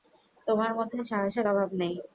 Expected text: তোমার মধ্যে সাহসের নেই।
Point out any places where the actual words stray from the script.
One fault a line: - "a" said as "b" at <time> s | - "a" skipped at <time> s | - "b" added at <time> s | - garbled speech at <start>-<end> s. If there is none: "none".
- "অভাব" added at 1.5 s